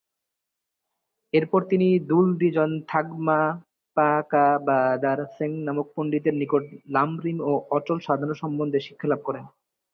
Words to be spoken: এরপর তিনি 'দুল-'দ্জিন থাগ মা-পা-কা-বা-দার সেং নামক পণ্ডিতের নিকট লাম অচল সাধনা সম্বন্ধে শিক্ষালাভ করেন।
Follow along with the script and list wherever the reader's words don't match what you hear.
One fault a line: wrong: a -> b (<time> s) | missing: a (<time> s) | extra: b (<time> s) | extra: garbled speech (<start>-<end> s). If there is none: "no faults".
extra: রিম ও (7.2 s)